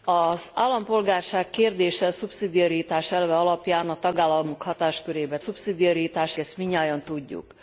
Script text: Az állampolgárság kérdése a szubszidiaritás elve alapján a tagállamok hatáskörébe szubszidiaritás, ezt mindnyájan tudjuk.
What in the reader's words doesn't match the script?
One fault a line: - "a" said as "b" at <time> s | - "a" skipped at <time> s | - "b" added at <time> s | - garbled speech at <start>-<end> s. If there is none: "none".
none